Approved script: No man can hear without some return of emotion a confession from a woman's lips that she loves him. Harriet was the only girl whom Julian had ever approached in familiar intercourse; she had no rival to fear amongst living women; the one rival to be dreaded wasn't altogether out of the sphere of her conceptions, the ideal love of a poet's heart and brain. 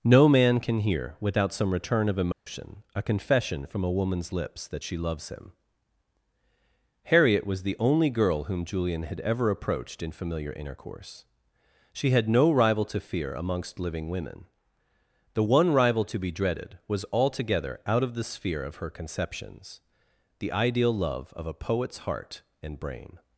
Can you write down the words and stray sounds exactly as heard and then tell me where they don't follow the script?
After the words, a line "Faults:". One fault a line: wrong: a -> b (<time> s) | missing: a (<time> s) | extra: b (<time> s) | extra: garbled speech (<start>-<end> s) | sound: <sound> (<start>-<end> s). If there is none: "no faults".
No man can hear without some return of emotion a confession from a woman's lips that she loves him. Harriet was the only girl whom Julian had ever approached in familiar intercourse; she had no rival to fear amongst living women; the one rival to be dreaded was altogether out of the sphere of her conceptions, the ideal love of a poet's heart and brain.
Faults:
sound: dropout (2.3-2.5 s)
wrong: wasn't -> was (16.9 s)